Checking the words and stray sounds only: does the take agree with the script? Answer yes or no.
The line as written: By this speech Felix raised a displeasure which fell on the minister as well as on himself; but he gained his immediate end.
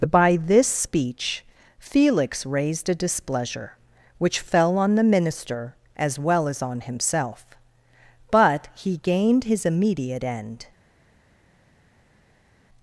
yes